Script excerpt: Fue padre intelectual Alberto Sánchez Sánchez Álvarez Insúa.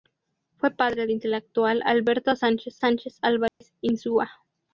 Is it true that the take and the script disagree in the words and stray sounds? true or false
true